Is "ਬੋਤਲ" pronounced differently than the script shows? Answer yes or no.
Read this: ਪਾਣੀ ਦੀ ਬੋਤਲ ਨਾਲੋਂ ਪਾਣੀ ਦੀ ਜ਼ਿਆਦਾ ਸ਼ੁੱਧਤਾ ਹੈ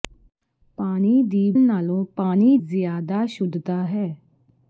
yes